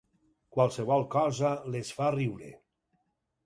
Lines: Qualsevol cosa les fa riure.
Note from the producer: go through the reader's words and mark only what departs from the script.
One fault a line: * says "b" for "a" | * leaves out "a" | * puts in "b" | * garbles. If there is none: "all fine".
all fine